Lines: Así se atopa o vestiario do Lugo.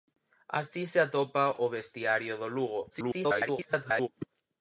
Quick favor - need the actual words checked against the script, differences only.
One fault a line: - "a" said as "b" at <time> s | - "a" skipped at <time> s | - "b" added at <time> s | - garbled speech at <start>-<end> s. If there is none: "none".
- garbled speech at 2.9-4.1 s